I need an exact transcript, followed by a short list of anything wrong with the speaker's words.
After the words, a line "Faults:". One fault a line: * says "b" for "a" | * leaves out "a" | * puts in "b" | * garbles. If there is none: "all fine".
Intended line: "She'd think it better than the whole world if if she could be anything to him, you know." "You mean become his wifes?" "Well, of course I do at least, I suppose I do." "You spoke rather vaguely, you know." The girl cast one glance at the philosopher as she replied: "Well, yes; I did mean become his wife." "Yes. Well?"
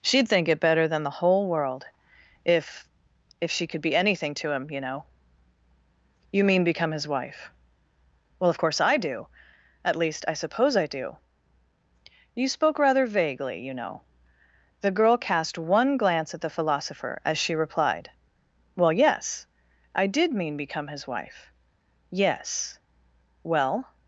"She'd think it better than the whole world if if she could be anything to him, you know." "You mean become his wife?" "Well, of course I do at least, I suppose I do." "You spoke rather vaguely, you know." The girl cast one glance at the philosopher as she replied: "Well, yes; I did mean become his wife." "Yes. Well?"
Faults:
* says "wife" for "wifes"